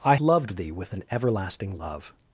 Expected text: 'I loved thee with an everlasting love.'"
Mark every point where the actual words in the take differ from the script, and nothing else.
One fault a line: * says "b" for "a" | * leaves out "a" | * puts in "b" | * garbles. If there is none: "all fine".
all fine